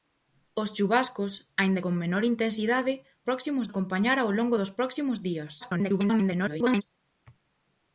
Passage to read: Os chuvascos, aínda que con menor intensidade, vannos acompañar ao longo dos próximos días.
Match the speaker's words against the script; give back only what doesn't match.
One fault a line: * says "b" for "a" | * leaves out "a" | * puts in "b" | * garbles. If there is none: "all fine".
* leaves out "que"
* says "próximos" for "vannos"
* garbles